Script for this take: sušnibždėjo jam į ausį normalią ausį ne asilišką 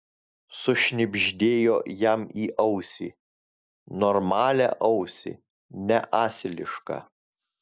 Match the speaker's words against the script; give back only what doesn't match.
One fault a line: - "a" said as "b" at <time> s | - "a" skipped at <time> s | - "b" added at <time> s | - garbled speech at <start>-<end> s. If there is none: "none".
none